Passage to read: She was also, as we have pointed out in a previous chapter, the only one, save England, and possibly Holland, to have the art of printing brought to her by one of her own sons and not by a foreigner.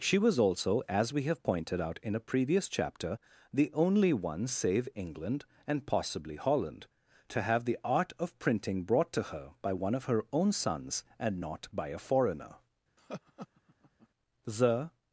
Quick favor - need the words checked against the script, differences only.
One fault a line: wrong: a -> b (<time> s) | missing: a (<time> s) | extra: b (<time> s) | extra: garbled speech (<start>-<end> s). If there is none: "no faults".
extra: The (14.4 s)